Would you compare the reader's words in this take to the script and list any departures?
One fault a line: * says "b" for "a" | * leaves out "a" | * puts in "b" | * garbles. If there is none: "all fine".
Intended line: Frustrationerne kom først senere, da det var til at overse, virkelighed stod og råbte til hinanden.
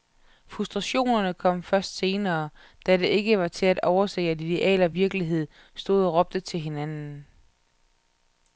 * puts in "ikke"
* puts in "at ideal og"